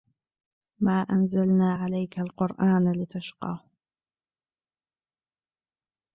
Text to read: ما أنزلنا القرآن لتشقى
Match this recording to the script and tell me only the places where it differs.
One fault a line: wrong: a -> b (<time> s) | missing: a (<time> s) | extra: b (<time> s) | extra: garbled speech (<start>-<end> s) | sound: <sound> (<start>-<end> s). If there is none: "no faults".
extra: عليك (1.7 s)